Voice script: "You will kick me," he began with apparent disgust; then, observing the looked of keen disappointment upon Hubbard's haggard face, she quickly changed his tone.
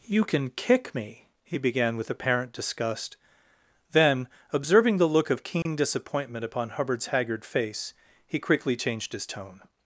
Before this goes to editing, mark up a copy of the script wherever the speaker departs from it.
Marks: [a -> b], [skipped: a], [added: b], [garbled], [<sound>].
"You [will -> can] kick me," he began with apparent disgust; then, observing the [looked -> look] of keen [dropout] disappointment upon Hubbard's haggard face, [she -> he] quickly changed his tone.